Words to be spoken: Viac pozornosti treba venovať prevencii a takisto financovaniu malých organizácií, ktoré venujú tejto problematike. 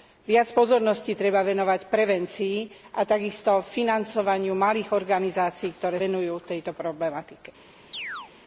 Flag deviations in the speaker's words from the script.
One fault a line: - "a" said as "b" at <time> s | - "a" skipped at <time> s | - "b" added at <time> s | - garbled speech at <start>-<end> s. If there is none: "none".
none